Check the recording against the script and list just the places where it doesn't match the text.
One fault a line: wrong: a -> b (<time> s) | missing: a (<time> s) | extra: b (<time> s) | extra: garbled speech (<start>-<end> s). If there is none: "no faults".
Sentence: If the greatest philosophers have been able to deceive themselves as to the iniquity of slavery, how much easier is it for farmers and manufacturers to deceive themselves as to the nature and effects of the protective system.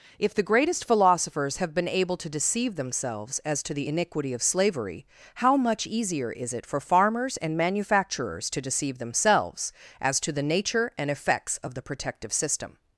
no faults